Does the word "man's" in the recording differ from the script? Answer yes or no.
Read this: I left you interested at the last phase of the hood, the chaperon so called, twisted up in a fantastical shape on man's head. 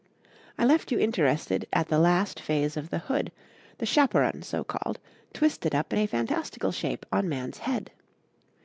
no